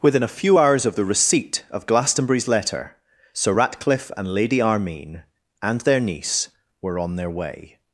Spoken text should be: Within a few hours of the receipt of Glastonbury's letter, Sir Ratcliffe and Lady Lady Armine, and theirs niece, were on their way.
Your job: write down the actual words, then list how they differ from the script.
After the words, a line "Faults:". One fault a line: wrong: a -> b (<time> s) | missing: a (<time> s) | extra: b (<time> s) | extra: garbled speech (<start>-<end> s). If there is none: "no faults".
Within a few hours of the receipt of Glastonbury's letter, Sir Ratcliffe and Lady Armine, and their niece, were on their way.
Faults:
missing: Lady (4.6 s)
wrong: theirs -> their (5.8 s)